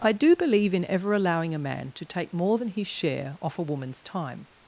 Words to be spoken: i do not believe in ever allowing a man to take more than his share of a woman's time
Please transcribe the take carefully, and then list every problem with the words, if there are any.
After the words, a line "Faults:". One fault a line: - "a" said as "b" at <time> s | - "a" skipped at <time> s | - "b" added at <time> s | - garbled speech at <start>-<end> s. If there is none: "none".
i do believe in ever allowing a man to take more than his share off a woman's time
Faults:
- "not" skipped at 0.3 s
- "of" said as "off" at 3.4 s